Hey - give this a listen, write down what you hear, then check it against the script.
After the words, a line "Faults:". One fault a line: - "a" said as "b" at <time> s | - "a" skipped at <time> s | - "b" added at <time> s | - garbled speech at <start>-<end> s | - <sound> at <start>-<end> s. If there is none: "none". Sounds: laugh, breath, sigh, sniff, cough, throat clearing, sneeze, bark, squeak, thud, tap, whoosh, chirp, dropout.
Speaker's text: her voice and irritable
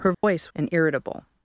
her voice and irritable
Faults:
- dropout at 0.1-0.2 s